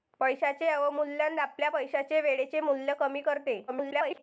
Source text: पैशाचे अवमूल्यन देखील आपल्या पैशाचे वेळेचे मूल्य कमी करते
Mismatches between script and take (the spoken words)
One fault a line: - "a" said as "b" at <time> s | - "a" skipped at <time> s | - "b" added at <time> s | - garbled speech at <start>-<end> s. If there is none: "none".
- "देखील" skipped at 1.4 s
- garbled speech at 3.7-4.2 s